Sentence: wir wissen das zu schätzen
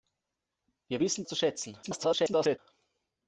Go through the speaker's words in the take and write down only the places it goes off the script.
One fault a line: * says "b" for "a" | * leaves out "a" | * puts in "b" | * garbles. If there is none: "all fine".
* leaves out "das"
* garbles